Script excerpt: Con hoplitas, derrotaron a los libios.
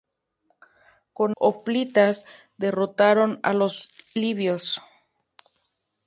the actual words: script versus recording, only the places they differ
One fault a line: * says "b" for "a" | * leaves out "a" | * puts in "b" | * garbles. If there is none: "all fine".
all fine